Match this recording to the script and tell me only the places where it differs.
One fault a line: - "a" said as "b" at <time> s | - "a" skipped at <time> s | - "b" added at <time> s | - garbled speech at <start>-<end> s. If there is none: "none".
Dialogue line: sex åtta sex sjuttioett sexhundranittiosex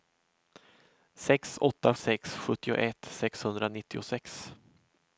none